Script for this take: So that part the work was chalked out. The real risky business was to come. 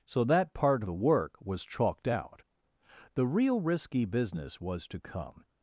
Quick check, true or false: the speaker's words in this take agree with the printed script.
true